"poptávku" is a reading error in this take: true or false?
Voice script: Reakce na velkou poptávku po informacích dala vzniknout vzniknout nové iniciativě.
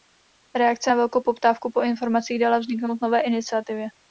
false